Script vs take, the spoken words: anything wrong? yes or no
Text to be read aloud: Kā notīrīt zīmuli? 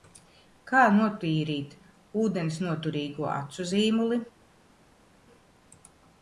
yes